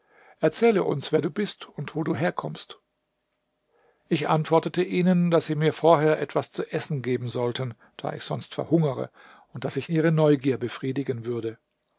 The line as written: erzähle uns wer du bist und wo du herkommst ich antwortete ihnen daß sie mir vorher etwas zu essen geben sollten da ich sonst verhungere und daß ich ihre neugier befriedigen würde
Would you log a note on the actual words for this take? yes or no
no